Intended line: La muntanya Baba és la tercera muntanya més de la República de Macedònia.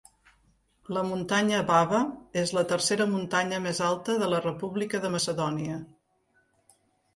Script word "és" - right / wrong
right